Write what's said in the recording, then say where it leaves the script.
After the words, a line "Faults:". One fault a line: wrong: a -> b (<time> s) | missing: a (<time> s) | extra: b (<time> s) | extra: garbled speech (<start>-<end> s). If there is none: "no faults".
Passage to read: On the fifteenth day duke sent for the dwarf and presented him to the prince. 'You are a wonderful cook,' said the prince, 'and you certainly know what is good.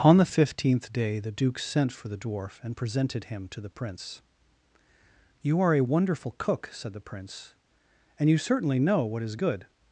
On the fifteenth day the duke sent for the dwarf and presented him to the prince. 'You are a wonderful cook,' said the prince, 'and you certainly know what is good.
Faults:
extra: the (1.2 s)